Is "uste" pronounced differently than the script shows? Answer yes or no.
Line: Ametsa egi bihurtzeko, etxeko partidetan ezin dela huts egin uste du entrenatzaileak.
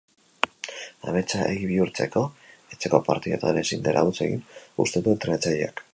no